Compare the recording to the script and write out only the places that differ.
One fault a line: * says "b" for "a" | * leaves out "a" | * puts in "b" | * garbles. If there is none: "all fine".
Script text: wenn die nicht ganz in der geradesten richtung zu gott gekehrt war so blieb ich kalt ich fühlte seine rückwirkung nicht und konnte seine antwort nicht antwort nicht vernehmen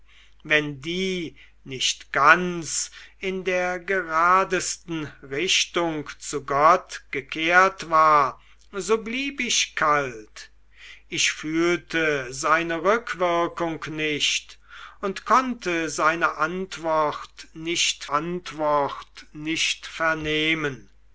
all fine